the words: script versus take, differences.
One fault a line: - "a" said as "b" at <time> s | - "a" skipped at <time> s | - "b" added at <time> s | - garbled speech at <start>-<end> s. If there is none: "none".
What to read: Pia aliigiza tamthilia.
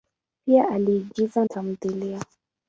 none